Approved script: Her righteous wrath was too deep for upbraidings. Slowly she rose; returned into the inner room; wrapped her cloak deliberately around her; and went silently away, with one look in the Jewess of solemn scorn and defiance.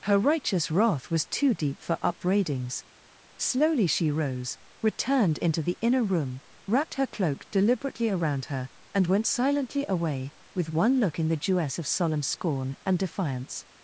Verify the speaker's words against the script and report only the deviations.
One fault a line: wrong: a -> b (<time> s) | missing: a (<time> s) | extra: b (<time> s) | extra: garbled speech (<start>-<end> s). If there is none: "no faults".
no faults